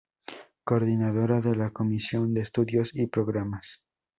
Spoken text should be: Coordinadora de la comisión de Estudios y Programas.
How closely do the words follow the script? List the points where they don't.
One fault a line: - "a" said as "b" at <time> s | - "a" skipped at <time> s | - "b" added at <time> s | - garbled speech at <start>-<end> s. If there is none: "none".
none